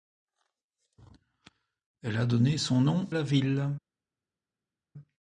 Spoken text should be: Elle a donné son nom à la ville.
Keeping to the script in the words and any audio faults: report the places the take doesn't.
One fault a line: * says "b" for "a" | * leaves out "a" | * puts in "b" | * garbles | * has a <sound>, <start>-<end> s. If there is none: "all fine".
* leaves out "à"